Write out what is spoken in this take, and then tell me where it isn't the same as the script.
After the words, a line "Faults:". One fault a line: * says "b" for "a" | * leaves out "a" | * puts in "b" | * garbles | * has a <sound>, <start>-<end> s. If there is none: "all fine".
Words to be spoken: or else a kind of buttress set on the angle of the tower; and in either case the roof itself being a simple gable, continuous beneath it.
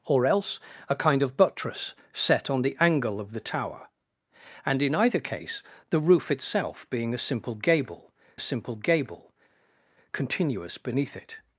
or else a kind of buttress set on the angle of the tower; and in either case the roof itself being a simple gable a simple gable, continuous beneath it.
Faults:
* puts in "a simple gable"